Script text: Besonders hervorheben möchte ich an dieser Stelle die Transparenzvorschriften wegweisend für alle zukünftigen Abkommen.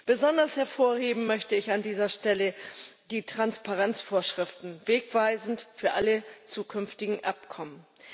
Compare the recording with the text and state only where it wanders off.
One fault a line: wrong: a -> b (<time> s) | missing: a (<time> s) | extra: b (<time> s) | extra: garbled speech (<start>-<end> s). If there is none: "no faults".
no faults